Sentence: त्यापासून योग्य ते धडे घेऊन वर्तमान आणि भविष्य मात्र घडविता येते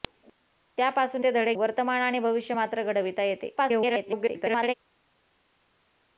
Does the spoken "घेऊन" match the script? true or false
false